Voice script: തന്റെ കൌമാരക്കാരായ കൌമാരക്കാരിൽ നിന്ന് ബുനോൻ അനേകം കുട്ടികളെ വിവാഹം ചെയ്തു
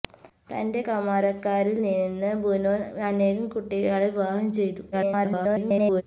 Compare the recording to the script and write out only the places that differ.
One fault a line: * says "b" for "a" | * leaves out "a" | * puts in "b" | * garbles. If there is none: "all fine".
* leaves out "കൌമാരക്കാരായ"
* garbles